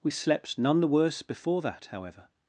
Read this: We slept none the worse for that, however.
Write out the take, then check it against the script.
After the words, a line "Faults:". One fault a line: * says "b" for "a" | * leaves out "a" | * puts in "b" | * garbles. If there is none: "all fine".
We slept none the worse before that, however.
Faults:
* says "before" for "for"